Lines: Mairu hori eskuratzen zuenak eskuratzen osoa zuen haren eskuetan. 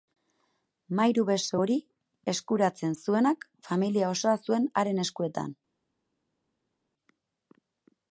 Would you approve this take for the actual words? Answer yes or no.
no